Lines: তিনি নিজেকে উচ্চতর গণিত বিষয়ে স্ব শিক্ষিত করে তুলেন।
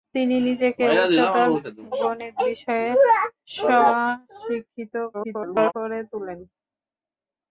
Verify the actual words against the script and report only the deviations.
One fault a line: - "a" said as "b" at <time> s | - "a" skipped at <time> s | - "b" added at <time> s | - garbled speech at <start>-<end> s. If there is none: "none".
- garbled speech at 5.1-5.7 s